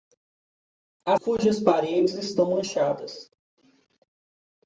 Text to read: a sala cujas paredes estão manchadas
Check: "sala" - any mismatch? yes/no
yes